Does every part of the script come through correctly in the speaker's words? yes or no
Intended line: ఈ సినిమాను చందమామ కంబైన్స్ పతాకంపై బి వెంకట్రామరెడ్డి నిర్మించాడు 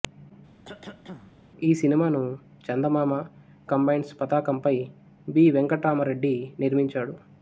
yes